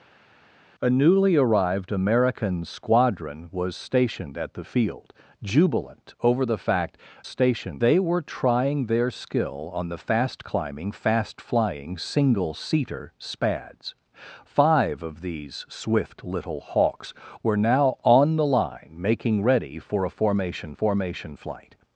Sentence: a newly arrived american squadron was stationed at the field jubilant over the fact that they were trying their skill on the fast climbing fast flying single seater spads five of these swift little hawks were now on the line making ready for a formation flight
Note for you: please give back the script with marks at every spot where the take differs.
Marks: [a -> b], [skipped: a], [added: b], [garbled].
a newly arrived american squadron was stationed at the field jubilant over the fact [that -> stationed] they were trying their skill on the fast climbing fast flying single seater spads five of these swift little hawks were now on the line making ready for a formation [added: formation] flight